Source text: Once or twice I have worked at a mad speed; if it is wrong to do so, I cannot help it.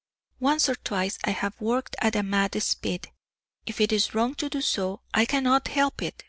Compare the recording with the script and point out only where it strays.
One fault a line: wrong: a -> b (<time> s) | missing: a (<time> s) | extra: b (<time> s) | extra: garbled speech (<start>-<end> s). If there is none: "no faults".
no faults